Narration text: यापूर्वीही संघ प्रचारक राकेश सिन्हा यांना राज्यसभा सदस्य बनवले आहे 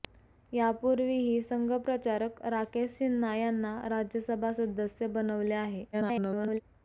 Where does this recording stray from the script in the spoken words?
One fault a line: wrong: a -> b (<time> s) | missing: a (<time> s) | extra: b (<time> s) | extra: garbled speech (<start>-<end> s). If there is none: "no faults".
extra: garbled speech (5.9-6.6 s)